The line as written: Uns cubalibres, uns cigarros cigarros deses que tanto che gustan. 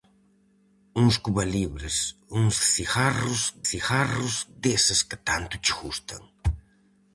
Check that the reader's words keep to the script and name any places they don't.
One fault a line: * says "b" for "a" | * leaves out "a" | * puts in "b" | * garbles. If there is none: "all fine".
all fine